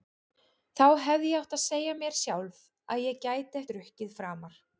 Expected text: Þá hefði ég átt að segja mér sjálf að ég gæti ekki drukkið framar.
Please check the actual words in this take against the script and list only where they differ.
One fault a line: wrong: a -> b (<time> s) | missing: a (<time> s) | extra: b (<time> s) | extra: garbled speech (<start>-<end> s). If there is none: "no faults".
missing: ekki (3.6 s)